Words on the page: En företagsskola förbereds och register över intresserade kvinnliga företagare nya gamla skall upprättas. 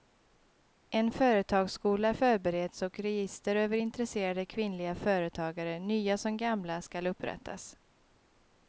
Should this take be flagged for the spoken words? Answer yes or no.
yes